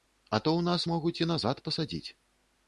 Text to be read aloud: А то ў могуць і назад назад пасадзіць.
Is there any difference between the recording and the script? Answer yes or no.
yes